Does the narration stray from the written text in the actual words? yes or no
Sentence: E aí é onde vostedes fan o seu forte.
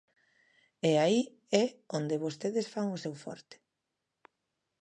no